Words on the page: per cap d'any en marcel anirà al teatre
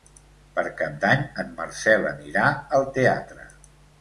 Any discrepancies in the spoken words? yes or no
no